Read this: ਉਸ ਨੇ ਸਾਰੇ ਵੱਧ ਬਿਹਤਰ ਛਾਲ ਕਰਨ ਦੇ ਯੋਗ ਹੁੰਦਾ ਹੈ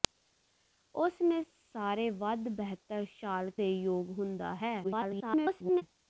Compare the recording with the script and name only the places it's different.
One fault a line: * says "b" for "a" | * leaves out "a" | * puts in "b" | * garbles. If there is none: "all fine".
* leaves out "ਕਰਨ"
* garbles